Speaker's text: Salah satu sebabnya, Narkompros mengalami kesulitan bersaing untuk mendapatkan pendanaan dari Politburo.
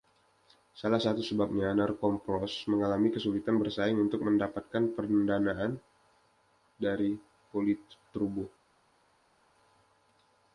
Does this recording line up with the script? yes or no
yes